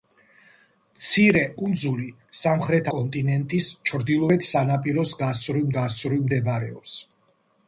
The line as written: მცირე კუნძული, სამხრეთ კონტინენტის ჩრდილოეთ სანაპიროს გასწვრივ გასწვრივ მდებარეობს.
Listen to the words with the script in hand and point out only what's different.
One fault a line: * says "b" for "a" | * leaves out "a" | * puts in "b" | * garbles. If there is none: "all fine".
all fine